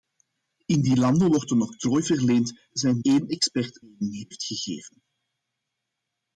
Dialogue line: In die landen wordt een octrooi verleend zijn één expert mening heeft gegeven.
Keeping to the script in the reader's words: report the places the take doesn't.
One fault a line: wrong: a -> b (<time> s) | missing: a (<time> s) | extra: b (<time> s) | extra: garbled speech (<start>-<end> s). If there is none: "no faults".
no faults